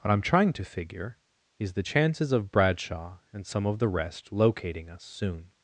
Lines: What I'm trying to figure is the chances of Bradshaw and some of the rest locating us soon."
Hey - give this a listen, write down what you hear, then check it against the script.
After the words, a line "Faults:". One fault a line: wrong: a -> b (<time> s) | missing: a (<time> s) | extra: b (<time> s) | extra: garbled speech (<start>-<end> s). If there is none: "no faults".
What I'm trying to figure is the chances of Bradshaw and some of the rest locating us soon."
Faults:
no faults